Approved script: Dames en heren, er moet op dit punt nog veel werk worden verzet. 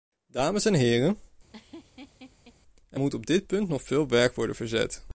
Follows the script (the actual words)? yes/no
yes